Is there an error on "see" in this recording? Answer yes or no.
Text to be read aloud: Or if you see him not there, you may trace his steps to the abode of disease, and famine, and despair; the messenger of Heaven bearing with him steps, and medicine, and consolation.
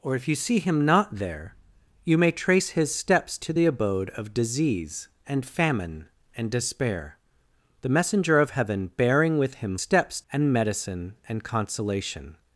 no